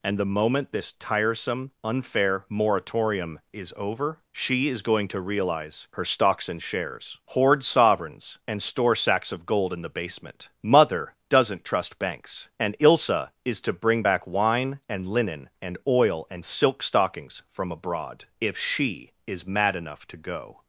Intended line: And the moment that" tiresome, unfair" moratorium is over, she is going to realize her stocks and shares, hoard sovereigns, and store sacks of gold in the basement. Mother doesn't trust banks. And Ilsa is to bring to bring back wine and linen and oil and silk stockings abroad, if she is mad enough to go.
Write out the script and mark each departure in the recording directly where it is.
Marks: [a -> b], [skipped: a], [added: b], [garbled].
And the moment [that" -> this] tiresome, unfair" moratorium is over, she is going to realize her stocks and shares, hoard sovereigns, and store sacks of gold in the basement. Mother doesn't trust banks. And Ilsa is to bring [skipped: to bring] back wine and linen and oil and silk stockings [added: from] abroad, if she is mad enough to go.